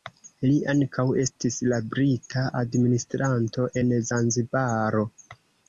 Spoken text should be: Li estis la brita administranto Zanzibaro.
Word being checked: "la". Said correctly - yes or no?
yes